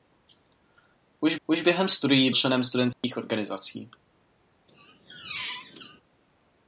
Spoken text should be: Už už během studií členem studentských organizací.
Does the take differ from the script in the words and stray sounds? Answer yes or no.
yes